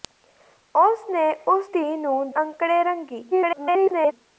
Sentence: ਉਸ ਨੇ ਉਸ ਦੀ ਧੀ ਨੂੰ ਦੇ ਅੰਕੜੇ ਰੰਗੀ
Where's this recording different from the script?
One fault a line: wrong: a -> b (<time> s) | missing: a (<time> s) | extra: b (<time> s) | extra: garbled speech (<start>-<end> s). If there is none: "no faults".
missing: ਦੀ (1.7 s)
missing: ਦੇ (2.3 s)
extra: garbled speech (3.3-4.1 s)